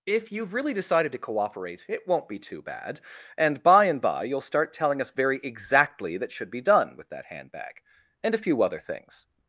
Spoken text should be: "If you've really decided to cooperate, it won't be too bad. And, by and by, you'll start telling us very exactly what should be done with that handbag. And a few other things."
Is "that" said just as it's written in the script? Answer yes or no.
yes